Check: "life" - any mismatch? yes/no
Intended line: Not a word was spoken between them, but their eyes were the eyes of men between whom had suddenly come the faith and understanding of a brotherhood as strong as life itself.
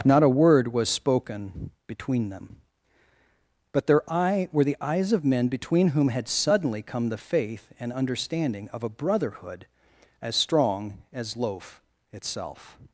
yes